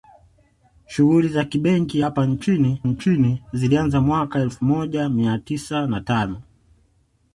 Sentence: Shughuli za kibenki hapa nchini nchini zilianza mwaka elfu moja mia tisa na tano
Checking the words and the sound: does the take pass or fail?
pass